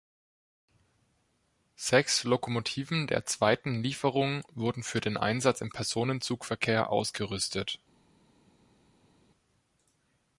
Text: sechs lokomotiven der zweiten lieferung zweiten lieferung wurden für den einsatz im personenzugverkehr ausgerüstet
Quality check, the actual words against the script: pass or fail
fail